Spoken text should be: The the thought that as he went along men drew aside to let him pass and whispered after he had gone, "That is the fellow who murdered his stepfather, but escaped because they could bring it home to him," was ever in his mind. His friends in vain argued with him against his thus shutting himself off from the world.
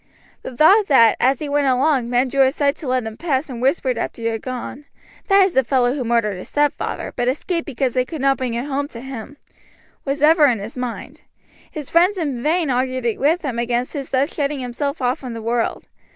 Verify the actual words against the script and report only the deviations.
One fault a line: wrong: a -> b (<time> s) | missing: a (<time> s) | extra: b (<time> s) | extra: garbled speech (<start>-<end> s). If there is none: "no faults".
missing: the (0.6 s)
extra: not (8.2 s)